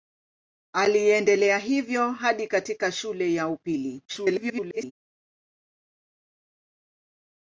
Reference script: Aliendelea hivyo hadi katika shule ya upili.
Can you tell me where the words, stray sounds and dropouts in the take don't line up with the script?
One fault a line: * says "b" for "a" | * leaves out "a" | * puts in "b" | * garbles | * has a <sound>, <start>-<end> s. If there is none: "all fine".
* garbles